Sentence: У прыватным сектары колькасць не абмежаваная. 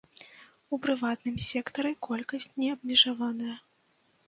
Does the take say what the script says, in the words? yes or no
yes